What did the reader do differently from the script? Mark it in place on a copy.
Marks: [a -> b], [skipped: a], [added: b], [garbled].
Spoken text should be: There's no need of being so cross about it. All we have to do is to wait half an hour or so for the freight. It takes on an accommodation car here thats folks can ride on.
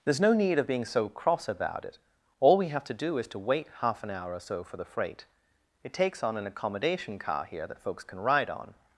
There's no need of being so cross about it. All we have to do is to wait half an hour or so for the freight. It takes on an accommodation car here [thats -> that] folks can ride on.